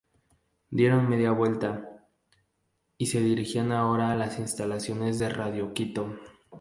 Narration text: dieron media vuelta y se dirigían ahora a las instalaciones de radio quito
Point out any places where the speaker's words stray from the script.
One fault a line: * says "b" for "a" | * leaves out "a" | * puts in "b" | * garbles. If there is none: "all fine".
all fine